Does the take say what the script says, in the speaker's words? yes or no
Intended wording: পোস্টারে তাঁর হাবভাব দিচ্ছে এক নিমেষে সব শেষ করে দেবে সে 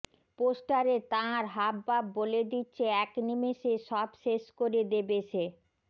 no